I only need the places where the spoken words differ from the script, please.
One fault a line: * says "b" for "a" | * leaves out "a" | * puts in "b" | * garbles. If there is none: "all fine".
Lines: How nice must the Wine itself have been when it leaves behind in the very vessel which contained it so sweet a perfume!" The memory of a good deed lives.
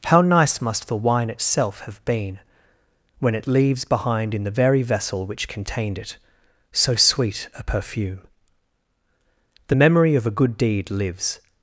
all fine